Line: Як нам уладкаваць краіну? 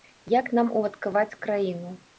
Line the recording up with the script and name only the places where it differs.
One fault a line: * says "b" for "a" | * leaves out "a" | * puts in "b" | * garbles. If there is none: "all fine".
all fine